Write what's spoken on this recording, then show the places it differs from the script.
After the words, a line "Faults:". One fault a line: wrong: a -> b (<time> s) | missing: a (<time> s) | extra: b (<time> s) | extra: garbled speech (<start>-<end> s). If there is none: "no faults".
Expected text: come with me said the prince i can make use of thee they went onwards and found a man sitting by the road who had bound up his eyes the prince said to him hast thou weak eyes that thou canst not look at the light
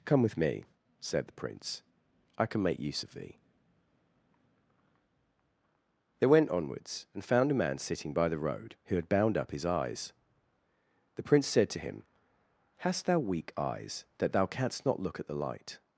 come with me said the prince i can make use of thee they went onwards and found a man sitting by the road who had bound up his eyes the prince said to him hast thou weak eyes that thou canst not look at the light
Faults:
no faults